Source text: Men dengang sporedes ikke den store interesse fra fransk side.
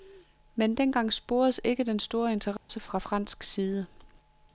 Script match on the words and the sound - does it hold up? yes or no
no